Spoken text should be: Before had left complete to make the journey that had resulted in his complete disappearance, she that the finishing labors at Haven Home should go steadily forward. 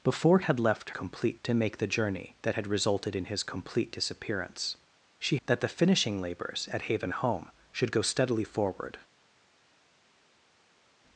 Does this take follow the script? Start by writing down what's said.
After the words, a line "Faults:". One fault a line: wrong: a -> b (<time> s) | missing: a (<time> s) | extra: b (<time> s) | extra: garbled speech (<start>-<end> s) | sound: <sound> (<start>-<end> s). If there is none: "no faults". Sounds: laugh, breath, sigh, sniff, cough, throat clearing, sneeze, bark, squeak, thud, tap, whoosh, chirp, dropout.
Before had left complete to make the journey that had resulted in his complete disappearance, she that the finishing labors at Haven Home should go steadily forward.
Faults:
no faults